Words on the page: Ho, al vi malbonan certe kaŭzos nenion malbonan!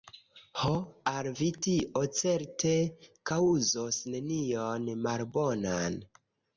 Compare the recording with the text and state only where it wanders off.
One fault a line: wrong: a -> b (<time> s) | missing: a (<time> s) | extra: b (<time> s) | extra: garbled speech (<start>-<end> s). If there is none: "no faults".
wrong: malbonan -> tio (1.7 s)